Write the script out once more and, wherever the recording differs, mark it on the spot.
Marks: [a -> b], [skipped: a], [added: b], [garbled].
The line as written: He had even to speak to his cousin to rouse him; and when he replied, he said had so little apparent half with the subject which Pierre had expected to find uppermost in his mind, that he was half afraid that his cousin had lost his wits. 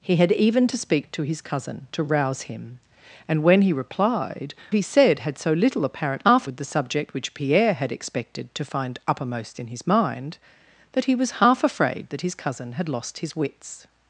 He had even to speak to his cousin to rouse him; and when he replied, he said had so little apparent half with the subject which Pierre had expected to find uppermost in his mind, that he was half afraid that his cousin had lost his wits.